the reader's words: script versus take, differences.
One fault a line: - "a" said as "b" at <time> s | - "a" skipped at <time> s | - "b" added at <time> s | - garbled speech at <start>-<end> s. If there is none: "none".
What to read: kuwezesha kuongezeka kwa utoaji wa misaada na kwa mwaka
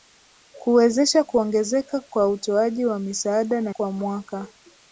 none